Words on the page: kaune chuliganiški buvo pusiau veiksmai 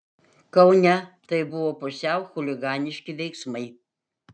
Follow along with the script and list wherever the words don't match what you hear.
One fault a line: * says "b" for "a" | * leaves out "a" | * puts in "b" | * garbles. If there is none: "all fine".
* says "tai" for "chuliganiški"
* puts in "chuliganiški"